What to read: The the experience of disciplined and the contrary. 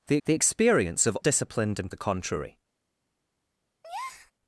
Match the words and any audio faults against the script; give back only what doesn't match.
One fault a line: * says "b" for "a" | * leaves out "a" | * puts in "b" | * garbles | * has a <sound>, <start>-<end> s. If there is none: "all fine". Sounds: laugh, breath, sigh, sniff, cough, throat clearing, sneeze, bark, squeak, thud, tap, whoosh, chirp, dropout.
* has a breath, 3.8-4.3 s